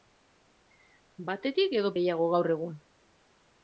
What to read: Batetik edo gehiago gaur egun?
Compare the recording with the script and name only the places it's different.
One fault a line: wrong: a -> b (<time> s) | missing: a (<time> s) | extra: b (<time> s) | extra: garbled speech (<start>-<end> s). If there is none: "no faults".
no faults